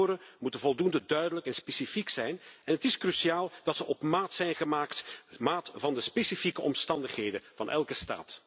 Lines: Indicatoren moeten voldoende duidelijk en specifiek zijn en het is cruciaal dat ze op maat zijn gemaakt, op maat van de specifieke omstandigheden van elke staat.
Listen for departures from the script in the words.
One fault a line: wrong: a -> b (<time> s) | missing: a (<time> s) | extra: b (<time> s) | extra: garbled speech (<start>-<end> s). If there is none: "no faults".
no faults